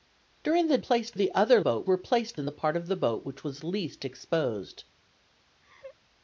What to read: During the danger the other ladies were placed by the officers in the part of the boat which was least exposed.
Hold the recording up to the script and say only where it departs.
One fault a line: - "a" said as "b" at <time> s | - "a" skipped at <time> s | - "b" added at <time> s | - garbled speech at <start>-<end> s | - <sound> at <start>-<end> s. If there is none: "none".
- "danger" said as "placed" at 0.8 s
- "ladies" said as "boat" at 1.6 s
- "by the officers" skipped at 2.4 s
- laugh at 5.6-6.0 s